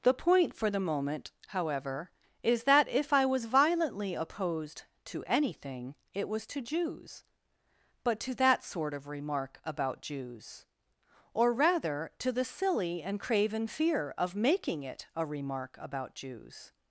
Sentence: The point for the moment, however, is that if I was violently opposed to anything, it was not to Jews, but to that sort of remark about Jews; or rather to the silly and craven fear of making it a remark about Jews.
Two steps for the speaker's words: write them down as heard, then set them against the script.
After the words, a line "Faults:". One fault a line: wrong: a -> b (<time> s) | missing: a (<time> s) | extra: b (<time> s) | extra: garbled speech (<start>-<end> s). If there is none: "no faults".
The point for the moment, however, is that if I was violently opposed to anything, it was to Jews, but to that sort of remark about Jews; or rather to the silly and craven fear of making it a remark about Jews.
Faults:
missing: not (6.5 s)